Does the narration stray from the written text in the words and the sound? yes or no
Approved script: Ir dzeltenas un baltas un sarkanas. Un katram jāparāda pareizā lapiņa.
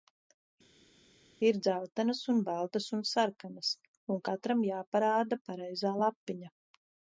no